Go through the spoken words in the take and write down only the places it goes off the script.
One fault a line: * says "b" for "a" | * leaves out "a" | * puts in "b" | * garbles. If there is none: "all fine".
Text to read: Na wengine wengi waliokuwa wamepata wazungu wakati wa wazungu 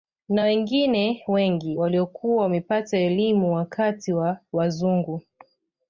* says "elimu" for "wazungu"